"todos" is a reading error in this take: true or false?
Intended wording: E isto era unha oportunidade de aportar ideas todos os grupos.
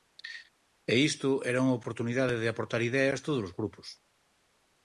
false